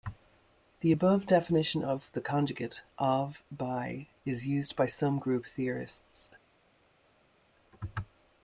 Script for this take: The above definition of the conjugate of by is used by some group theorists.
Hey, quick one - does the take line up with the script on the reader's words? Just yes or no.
yes